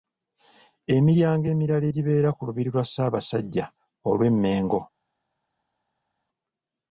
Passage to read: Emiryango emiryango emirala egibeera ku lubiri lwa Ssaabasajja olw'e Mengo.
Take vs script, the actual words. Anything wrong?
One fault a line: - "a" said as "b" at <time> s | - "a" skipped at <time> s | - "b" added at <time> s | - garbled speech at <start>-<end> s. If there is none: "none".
- "emiryango" skipped at 1.4 s